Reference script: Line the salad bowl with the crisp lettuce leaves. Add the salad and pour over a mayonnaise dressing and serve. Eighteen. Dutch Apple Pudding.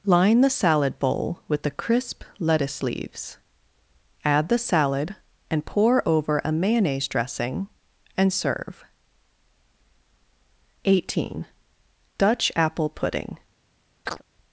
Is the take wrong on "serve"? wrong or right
right